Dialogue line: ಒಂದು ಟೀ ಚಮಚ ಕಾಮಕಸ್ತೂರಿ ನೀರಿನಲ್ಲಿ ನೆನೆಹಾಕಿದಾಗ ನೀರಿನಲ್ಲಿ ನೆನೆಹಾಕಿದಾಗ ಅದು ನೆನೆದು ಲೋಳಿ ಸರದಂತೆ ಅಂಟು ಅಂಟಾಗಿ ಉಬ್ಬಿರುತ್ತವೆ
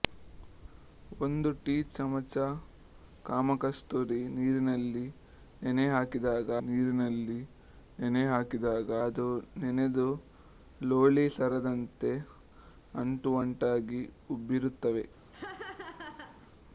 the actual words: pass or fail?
pass